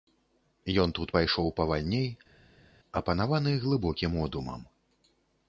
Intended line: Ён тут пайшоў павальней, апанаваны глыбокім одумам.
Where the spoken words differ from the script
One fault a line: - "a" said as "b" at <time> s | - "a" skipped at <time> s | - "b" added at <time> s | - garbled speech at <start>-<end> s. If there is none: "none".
none